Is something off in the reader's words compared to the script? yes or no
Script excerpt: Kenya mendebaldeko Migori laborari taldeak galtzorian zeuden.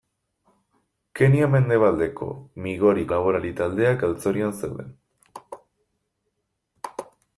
no